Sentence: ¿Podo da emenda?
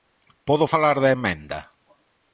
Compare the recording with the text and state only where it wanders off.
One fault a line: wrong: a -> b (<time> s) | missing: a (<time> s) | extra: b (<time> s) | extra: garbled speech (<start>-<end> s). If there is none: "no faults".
extra: falar (0.7 s)